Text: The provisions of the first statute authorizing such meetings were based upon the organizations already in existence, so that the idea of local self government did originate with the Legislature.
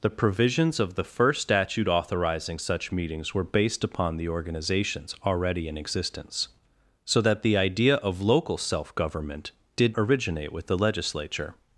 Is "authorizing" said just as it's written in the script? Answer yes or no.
yes